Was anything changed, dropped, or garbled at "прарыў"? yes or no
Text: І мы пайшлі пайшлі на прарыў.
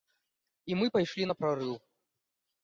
no